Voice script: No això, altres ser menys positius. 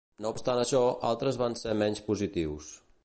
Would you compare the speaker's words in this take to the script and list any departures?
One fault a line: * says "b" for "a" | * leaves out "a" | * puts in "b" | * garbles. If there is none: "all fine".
* puts in "obstant"
* puts in "van"